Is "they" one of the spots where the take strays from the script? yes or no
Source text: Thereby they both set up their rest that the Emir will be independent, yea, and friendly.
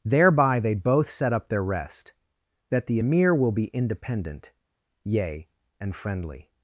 no